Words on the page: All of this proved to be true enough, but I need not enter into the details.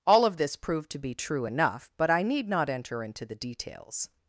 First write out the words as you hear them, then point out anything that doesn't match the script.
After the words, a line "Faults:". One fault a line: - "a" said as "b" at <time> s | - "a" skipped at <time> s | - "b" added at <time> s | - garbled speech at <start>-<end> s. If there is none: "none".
All of this proved to be true enough, but I need not enter into the details.
Faults:
none